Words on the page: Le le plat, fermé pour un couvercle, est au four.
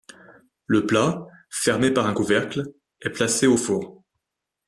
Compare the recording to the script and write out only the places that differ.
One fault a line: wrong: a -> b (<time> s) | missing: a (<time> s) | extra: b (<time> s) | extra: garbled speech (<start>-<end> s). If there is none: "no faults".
missing: le (0.9 s)
wrong: pour -> par (1.9 s)
extra: placé (3.1 s)